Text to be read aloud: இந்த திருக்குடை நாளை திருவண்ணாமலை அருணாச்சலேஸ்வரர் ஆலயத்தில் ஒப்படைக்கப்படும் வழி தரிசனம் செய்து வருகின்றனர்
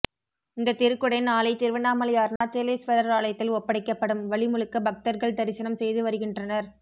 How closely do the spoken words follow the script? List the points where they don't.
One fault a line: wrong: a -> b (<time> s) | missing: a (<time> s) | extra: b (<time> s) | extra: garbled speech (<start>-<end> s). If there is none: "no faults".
extra: முழுக்க பக்தர்கள் (4.5 s)